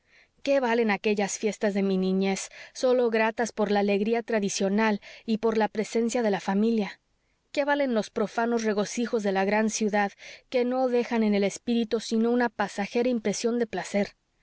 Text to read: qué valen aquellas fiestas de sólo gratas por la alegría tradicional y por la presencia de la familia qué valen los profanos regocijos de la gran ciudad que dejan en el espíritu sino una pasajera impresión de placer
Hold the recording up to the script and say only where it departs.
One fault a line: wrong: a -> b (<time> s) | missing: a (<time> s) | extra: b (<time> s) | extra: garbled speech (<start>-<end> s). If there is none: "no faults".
extra: mi niñez (1.8 s)
extra: no (10.7 s)